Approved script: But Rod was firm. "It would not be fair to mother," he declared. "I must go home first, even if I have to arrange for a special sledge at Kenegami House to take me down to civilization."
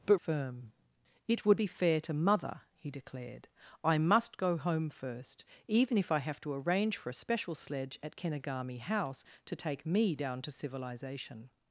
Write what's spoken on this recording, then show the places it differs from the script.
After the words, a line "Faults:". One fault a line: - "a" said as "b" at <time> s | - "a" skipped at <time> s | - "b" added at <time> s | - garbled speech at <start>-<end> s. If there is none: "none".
But Firm. "It would be fair to mother," he declared. "I must go home first, even if I have to arrange for a special sledge at Kenegami House to take me down to civilization."
Faults:
- "Rod was" skipped at 0.2 s
- "not" skipped at 1.6 s